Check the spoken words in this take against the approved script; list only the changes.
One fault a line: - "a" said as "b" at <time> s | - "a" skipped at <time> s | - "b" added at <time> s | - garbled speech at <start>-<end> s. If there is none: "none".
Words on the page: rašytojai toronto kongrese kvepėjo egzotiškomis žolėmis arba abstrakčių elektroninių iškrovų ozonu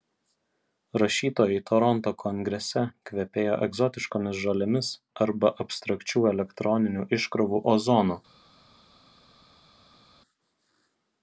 none